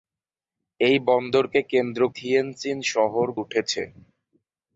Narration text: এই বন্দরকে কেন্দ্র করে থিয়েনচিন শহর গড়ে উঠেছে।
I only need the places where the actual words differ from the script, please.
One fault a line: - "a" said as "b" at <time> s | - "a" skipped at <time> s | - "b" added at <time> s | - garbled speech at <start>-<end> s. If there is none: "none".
- "করে" skipped at 2.0 s
- "গড়ে" skipped at 3.3 s